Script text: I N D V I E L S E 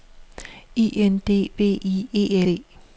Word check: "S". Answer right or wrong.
wrong